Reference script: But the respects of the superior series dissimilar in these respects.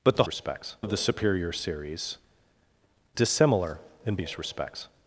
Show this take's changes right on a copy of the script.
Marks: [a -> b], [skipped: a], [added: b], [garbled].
But the respects of the superior series dissimilar in these respects.